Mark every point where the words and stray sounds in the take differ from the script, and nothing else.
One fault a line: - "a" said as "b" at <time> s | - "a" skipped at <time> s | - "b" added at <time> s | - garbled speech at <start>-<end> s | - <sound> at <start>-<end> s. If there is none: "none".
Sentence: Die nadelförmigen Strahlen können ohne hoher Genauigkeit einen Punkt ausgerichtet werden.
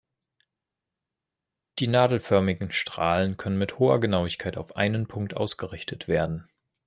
- "ohne" said as "mit" at 3.6 s
- "auf" added at 4.6 s